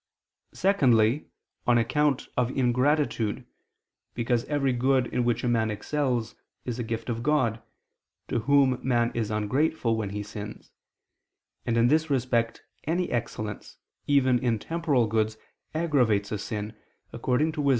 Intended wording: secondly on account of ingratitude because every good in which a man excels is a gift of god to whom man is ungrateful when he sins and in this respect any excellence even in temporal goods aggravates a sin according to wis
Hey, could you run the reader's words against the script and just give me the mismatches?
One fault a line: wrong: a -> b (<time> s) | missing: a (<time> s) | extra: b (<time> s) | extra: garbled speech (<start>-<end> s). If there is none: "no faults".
no faults